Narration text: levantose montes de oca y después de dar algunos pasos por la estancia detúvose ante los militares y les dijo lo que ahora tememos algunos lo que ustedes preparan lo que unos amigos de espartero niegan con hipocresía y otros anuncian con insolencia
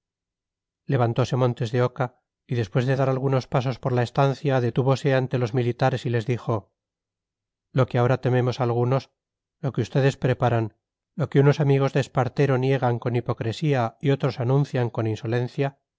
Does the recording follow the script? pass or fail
pass